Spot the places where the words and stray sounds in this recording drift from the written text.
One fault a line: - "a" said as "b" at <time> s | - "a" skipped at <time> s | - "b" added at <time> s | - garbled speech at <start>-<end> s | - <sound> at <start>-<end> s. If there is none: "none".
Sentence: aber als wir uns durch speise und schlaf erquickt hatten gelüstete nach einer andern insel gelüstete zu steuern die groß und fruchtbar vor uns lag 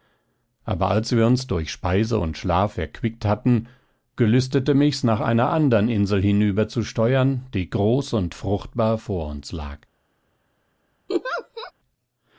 - "mich's" added at 4.7 s
- "gelüstete" said as "hinüber" at 6.2 s
- laugh at 11.1-11.7 s